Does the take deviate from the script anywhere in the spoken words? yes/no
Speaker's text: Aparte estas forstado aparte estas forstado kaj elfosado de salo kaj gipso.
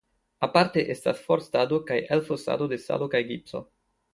yes